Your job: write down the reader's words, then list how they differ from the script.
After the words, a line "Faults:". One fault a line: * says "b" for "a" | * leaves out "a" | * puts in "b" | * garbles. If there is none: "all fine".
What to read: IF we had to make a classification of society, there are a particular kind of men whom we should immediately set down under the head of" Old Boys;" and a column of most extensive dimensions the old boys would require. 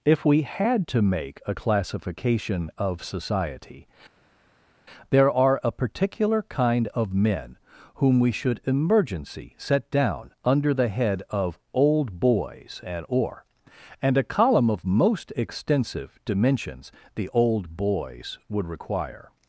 IF we had to make a classification of society, there are a particular kind of men whom we should emergency set down under the head of" Old Boys;" and or and a column of most extensive dimensions the old boys would require.
Faults:
* says "emergency" for "immediately"
* puts in "or and"